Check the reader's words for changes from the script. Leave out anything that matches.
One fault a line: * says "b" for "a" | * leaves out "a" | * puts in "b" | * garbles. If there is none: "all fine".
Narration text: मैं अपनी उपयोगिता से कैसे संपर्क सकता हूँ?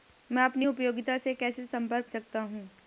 all fine